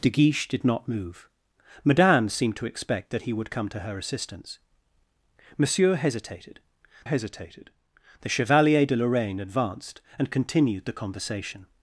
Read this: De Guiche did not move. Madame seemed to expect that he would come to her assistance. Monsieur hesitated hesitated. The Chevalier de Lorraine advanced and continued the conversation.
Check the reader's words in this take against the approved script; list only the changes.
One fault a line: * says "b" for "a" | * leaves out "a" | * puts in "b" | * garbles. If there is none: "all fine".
all fine